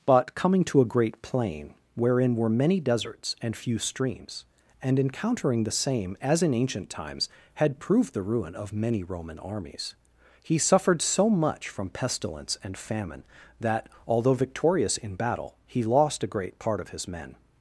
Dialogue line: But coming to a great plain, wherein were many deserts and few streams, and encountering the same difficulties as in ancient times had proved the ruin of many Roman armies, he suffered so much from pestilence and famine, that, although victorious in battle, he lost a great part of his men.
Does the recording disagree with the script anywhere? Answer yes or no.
yes